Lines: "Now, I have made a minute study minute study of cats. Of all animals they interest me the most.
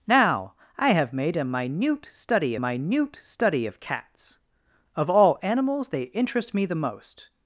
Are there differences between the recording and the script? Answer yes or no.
no